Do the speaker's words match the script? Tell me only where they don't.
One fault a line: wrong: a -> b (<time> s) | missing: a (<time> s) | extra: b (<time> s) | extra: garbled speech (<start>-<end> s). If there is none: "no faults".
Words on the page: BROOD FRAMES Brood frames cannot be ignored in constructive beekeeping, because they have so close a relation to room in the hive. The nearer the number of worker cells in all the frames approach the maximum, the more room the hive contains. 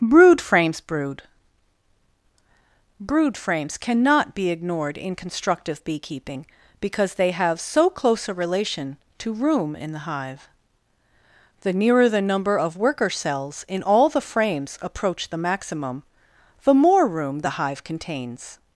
extra: brood (3.0 s)